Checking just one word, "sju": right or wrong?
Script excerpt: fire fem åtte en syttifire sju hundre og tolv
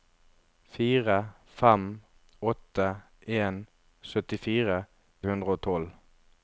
wrong